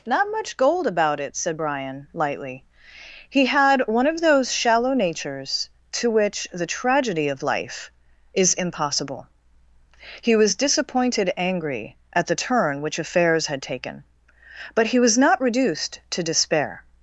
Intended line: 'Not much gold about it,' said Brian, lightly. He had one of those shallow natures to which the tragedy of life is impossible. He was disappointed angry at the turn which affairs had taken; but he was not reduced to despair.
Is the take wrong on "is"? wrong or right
right